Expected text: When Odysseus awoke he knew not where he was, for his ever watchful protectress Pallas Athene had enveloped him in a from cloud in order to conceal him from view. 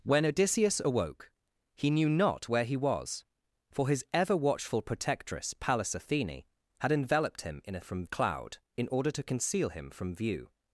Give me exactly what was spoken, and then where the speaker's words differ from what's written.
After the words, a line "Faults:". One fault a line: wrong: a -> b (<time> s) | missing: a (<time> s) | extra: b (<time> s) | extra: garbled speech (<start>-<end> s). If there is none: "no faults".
When Odysseus awoke he knew not where he was, for his ever watchful protectress Pallas Athene had enveloped him in a from cloud in order to conceal him from view.
Faults:
no faults